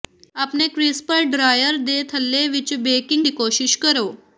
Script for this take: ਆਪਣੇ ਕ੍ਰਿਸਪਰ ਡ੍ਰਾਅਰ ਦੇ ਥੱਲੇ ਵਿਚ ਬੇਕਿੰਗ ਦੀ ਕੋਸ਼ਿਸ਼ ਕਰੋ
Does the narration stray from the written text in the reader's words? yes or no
no